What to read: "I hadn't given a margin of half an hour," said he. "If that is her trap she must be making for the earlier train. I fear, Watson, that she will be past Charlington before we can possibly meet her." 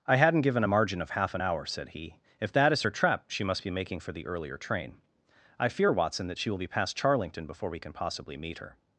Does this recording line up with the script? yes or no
yes